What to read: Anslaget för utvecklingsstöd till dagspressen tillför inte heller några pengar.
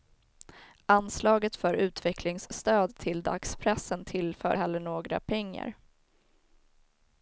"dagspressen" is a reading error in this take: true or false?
false